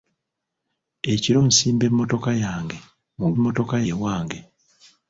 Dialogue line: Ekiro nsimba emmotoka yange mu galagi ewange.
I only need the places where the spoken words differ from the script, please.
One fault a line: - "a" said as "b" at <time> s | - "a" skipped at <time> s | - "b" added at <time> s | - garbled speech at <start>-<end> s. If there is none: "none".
- "galagi" said as "emmotoka" at 3.4 s